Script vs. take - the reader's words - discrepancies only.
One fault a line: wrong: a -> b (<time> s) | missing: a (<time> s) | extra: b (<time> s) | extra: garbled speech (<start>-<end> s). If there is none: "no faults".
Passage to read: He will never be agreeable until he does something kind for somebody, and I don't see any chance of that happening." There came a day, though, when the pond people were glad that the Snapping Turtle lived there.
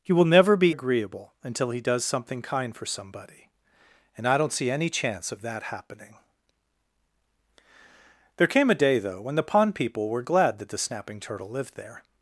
no faults